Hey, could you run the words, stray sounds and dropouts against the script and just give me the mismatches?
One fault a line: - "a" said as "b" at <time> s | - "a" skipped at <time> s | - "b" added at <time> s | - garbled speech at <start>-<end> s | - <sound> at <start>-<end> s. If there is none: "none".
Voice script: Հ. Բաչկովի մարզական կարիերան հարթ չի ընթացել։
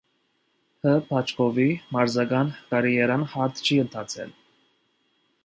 none